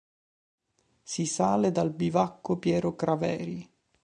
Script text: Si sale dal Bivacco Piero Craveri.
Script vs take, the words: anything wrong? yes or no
no